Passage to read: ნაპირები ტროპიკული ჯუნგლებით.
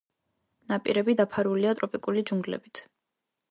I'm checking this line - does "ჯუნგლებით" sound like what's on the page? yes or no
yes